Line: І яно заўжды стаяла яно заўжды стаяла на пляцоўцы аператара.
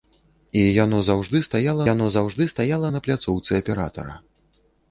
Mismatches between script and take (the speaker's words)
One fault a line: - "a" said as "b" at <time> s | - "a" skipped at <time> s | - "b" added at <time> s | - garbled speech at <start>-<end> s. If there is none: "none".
none